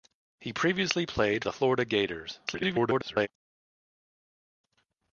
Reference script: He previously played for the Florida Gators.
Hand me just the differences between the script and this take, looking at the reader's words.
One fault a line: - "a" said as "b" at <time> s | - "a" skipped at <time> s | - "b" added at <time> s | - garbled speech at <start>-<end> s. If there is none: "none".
- "for" skipped at 1.4 s
- garbled speech at 2.5-3.3 s